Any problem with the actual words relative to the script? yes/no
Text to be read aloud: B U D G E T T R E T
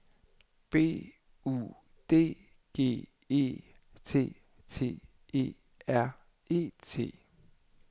yes